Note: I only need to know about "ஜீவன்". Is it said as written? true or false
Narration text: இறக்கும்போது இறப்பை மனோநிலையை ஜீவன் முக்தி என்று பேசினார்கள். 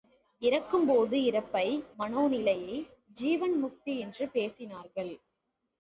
true